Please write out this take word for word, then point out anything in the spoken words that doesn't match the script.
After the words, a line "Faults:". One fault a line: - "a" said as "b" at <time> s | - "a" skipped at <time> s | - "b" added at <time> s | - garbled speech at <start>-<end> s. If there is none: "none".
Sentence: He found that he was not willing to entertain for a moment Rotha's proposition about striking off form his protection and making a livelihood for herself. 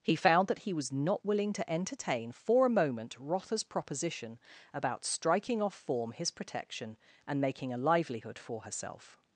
He found that he was not willing to entertain for a moment Rotha's proposition about striking off form his protection and making a livelihood for herself.
Faults:
none